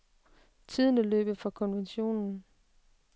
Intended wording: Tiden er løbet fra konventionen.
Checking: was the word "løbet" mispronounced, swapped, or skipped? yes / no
no